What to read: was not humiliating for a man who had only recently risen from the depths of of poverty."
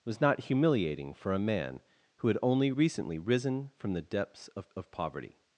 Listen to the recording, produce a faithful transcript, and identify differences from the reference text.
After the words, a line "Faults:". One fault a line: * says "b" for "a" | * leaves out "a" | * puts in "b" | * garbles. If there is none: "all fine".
was not humiliating for a man who had only recently risen from the depths of of poverty."
Faults:
all fine